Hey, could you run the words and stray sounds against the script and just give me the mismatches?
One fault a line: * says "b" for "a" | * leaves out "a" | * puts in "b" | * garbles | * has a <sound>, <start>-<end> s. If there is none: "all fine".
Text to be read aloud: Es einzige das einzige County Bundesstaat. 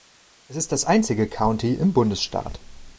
* says "ist" for "einzige"
* puts in "im"